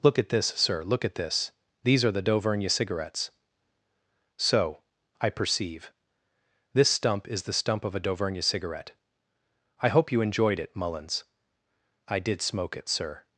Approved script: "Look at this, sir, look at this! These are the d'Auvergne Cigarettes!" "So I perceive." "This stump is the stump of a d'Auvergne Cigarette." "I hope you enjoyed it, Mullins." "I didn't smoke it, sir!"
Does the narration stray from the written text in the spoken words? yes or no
yes